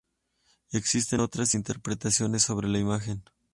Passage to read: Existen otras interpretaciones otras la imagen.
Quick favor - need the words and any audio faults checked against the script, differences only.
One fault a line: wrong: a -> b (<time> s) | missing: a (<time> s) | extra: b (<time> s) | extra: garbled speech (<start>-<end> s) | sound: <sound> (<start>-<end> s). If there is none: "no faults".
wrong: otras -> sobre (2.4 s)